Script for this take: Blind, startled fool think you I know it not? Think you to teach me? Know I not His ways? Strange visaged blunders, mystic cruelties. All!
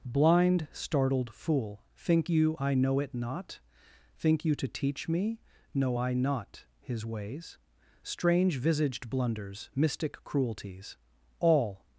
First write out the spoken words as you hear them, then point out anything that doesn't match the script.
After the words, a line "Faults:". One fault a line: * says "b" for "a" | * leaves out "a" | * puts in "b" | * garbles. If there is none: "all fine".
Blind, startled fool think you I know it not? Think you to teach me? Know I not His ways? Strange visaged blunders, mystic cruelties. All!
Faults:
all fine